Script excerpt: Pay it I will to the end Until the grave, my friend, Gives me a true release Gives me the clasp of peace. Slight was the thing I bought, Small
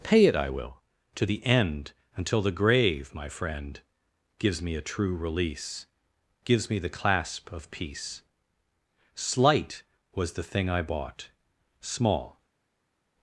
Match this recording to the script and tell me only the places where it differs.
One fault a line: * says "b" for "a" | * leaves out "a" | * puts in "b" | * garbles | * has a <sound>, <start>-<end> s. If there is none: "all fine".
all fine